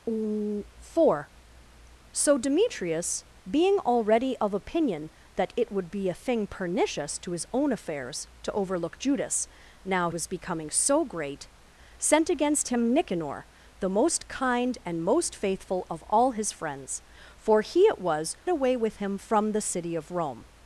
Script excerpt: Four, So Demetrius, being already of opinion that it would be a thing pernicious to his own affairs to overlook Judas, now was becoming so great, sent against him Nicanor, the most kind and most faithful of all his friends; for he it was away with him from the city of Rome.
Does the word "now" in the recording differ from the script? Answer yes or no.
no